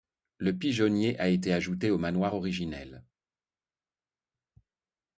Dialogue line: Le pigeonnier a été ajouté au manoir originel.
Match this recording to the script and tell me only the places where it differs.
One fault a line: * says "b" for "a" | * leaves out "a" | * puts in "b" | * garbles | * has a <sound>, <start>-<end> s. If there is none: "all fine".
all fine